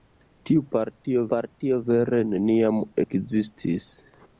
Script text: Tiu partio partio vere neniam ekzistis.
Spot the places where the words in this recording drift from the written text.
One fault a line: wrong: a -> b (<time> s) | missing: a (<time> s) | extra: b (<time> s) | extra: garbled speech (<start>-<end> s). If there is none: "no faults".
no faults